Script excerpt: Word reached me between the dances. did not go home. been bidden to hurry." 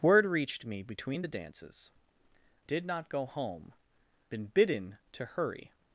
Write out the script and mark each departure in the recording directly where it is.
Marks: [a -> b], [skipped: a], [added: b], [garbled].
Word reached me between the dances. did not go home. been bidden to hurry."